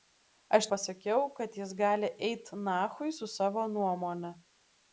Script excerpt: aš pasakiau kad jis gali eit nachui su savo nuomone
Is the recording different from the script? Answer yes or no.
no